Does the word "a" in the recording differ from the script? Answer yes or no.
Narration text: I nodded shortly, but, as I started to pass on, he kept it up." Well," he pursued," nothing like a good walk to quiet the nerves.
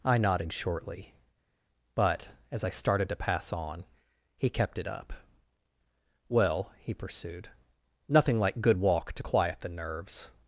yes